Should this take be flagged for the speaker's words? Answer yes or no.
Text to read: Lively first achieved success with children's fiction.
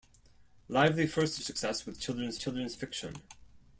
yes